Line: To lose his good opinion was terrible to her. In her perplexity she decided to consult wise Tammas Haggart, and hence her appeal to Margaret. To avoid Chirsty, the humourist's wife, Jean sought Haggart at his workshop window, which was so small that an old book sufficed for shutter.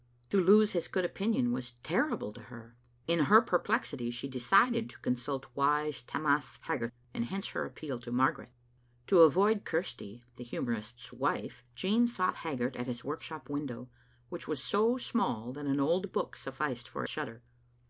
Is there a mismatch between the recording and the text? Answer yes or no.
no